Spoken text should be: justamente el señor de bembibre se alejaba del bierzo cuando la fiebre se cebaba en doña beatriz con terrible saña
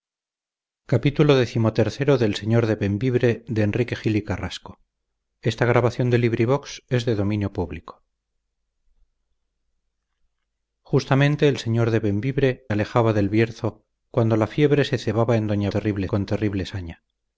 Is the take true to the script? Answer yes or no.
no